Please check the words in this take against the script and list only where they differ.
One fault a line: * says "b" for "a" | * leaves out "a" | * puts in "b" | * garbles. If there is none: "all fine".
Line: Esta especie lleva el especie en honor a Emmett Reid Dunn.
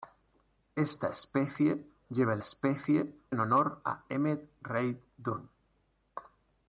all fine